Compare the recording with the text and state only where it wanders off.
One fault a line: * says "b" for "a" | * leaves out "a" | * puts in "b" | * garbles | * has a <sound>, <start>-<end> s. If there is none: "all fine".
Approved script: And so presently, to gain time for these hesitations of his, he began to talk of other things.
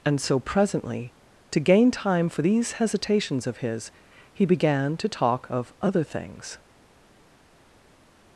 all fine